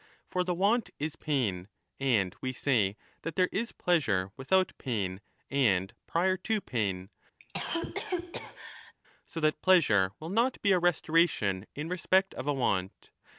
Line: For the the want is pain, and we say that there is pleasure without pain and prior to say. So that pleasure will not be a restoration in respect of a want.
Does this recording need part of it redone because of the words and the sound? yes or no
yes